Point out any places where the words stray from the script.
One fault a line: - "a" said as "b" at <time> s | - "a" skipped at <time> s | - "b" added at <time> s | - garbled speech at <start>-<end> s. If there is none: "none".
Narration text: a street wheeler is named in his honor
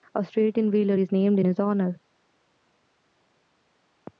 - "in" added at 0.6 s